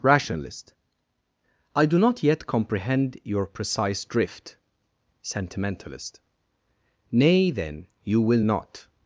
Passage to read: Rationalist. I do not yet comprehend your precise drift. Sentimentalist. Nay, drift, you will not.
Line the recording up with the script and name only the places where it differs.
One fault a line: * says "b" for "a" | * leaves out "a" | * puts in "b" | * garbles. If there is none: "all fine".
* says "then" for "drift"